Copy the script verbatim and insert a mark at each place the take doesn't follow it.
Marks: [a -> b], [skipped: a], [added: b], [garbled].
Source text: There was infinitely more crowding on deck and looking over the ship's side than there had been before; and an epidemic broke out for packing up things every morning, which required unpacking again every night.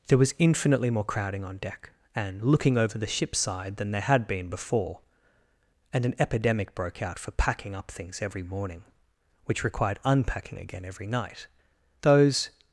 There was infinitely more crowding on deck and looking over the ship's side than there had been before; and an epidemic broke out for packing up things every morning, which required unpacking again every night. [added: Those]